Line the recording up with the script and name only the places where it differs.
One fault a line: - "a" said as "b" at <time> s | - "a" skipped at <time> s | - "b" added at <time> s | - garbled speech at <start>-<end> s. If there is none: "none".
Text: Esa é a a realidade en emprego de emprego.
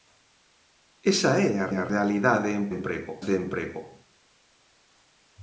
none